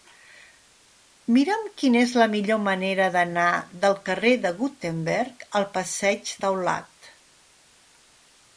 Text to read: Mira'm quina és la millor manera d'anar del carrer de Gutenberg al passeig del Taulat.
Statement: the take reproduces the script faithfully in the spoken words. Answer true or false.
false